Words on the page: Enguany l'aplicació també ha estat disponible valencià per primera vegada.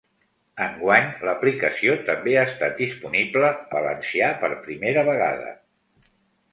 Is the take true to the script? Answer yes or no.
yes